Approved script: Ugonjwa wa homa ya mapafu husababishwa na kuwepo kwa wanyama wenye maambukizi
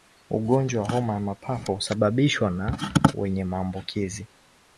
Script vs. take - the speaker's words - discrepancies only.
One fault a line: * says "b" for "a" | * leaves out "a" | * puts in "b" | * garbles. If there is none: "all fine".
* leaves out "kuwepo kwa wanyama"